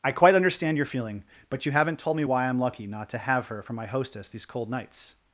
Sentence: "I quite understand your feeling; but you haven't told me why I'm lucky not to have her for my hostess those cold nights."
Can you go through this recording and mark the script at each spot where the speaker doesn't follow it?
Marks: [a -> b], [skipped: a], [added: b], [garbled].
"I quite understand your feeling; but you haven't told me why I'm lucky not to have her for my hostess [those -> these] cold nights."